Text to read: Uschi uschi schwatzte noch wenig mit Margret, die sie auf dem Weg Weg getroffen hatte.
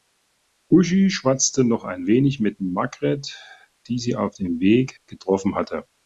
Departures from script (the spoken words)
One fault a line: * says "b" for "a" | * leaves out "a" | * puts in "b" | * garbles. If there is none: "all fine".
* leaves out "uschi"
* puts in "ein"
* leaves out "Weg"